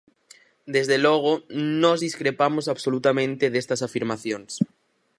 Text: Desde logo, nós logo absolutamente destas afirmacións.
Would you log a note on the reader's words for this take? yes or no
yes